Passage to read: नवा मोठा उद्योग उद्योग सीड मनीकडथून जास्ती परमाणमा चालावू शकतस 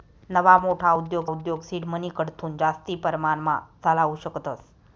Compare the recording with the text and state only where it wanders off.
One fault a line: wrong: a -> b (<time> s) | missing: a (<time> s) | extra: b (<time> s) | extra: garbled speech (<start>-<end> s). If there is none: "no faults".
no faults